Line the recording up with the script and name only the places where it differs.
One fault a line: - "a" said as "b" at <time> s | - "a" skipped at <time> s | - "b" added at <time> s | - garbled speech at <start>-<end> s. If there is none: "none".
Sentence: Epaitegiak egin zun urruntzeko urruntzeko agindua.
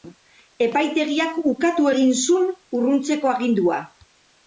- "ukatu" added at 1.5 s
- "urruntzeko" skipped at 3.4 s